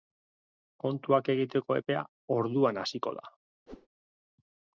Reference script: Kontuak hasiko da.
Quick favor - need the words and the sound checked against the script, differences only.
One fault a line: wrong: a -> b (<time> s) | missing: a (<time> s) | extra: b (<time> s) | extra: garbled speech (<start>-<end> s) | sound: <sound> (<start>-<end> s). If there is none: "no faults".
extra: egiteko epea orduan (1.3 s)
sound: whoosh (3.7-3.9 s)